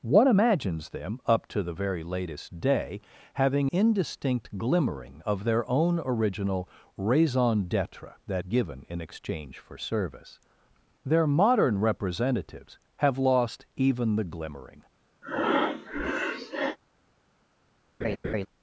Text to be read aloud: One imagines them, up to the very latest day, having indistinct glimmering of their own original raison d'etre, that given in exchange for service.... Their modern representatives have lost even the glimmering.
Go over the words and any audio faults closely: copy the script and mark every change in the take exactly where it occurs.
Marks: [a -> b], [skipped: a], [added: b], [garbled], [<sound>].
One imagines them, up to the very latest day, having indistinct glimmering of their own original raison d'etre, that given in exchange for service.... Their modern representatives have lost even the glimmering. [breath] [laugh]